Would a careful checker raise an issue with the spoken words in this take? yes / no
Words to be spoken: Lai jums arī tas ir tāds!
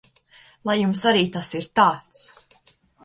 no